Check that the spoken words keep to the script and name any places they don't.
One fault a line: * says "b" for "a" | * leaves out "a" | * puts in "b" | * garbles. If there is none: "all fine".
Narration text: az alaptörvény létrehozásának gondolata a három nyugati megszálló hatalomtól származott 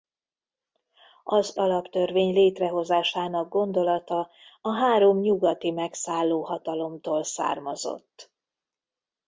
all fine